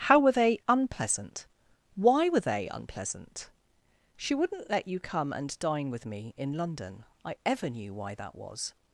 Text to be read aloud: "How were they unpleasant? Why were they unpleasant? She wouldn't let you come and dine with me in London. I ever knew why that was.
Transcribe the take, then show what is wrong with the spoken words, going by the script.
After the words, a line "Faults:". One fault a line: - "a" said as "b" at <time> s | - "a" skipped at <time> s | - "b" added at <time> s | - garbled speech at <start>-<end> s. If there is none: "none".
"How were they unpleasant? Why were they unpleasant? She wouldn't let you come and dine with me in London. I ever knew why that was.
Faults:
none